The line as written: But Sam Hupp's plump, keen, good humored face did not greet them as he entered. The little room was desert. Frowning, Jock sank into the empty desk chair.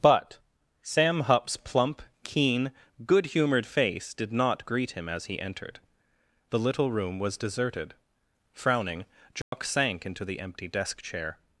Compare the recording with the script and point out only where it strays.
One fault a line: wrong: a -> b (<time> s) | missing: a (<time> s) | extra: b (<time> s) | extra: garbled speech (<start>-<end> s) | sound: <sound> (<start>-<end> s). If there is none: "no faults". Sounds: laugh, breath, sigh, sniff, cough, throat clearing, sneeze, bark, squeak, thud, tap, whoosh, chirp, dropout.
wrong: them -> him (4.9 s)
wrong: desert -> deserted (7.4 s)
sound: dropout (9.4-9.5 s)